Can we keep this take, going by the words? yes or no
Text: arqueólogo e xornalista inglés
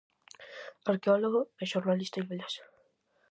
yes